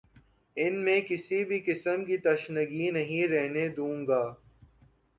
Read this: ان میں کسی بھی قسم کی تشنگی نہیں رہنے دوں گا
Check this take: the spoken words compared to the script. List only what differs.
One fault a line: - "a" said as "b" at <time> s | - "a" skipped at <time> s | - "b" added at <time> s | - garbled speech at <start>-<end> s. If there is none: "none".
none